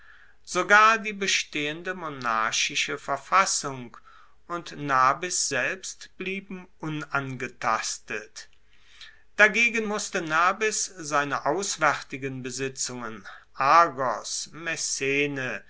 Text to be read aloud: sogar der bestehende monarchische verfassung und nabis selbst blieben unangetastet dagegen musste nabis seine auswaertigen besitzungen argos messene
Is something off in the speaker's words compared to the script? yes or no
yes